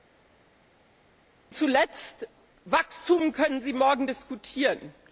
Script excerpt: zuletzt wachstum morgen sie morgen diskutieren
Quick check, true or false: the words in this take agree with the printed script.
false